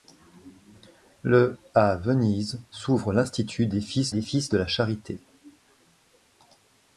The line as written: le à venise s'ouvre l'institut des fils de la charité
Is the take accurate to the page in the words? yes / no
no